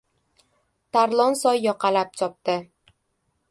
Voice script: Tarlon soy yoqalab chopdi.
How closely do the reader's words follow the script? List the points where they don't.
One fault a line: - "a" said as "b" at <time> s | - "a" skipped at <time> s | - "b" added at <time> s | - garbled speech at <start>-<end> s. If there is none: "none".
none